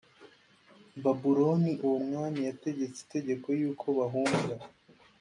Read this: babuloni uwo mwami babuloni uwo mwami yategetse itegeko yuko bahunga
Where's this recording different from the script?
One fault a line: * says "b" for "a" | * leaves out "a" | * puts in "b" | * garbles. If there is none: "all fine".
* leaves out "babuloni uwo mwami"